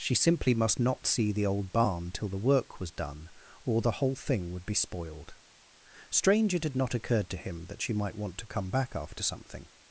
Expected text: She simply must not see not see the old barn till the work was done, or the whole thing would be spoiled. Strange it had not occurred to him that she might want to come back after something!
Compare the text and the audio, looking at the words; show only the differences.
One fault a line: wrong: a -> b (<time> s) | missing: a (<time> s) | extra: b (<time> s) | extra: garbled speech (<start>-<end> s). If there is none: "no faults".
missing: not see (1.3 s)